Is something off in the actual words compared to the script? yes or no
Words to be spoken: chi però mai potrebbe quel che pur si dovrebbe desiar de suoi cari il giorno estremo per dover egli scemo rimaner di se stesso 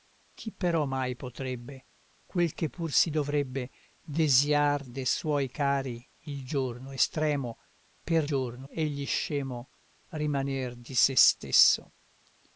yes